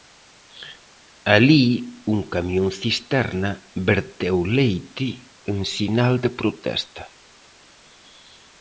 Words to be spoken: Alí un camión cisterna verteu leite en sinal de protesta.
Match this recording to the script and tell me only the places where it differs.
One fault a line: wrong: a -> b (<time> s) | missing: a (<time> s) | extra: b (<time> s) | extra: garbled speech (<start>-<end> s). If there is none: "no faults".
no faults